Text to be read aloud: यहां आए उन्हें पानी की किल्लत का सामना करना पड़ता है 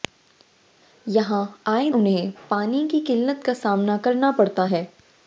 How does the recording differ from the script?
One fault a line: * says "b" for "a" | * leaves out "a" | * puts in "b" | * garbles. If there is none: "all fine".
all fine